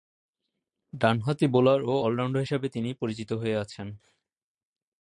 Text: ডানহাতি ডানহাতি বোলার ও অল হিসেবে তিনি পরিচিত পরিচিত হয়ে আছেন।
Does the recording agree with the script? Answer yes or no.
no